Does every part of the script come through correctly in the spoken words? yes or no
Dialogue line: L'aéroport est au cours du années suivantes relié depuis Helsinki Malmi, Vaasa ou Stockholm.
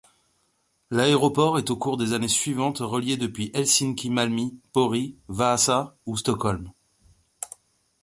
no